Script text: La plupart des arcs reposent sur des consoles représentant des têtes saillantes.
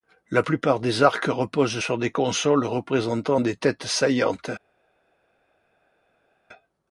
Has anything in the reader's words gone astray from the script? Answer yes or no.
no